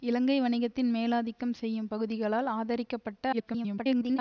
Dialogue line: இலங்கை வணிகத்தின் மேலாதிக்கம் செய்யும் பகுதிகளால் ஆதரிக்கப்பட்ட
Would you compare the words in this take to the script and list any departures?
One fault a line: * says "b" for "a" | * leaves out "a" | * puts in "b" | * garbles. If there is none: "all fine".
* garbles